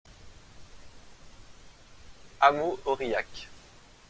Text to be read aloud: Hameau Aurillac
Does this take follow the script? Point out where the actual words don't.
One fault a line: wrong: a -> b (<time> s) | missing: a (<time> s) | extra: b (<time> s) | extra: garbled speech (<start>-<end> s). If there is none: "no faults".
no faults